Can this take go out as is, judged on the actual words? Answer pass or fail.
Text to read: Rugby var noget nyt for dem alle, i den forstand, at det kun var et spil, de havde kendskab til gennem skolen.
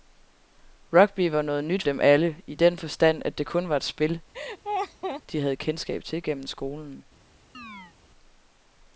fail